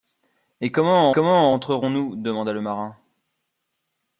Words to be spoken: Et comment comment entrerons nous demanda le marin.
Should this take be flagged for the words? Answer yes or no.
no